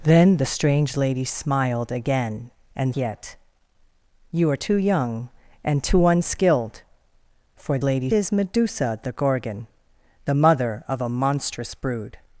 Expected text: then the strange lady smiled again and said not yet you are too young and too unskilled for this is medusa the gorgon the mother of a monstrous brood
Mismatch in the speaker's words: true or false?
true